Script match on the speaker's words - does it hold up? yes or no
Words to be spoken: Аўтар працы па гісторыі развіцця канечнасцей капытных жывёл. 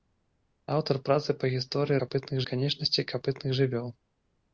no